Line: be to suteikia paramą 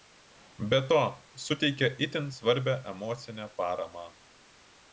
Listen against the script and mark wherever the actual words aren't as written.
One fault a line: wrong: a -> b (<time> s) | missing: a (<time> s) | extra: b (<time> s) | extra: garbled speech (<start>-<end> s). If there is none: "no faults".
extra: itin svarbią emocinę (2.1 s)